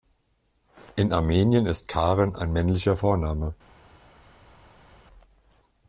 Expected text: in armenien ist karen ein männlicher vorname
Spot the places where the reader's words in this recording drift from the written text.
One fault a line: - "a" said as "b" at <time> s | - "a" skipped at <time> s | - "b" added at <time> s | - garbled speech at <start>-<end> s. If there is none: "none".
none